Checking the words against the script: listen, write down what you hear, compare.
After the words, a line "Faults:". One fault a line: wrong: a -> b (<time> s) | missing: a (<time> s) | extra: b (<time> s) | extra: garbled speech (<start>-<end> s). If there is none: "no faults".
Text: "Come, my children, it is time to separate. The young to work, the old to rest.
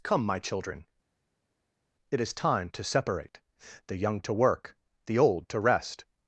"Come, my children, it is time to separate. The young to work, the old to rest.
Faults:
no faults